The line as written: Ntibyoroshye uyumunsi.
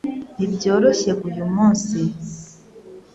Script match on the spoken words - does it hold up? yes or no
yes